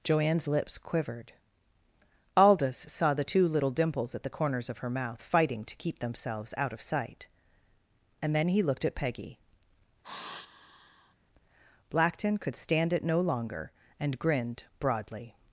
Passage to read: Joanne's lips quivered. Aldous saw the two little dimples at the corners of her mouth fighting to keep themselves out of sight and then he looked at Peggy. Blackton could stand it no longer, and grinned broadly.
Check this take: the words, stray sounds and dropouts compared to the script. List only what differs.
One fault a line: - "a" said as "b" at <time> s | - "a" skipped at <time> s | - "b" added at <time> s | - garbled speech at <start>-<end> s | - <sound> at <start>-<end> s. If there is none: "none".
- sigh at 10.0-11.1 s